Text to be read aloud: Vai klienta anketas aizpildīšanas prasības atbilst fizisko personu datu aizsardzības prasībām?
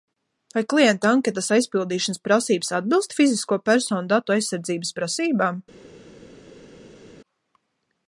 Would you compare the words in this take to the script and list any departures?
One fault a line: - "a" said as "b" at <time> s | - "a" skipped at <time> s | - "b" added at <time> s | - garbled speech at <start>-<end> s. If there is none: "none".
none